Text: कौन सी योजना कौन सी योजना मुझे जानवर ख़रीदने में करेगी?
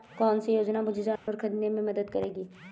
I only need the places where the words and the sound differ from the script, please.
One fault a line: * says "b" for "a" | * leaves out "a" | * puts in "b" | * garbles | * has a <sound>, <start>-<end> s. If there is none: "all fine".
* leaves out "कौन सी योजना"
* has a dropout, 1.2-1.3 s
* puts in "मदद"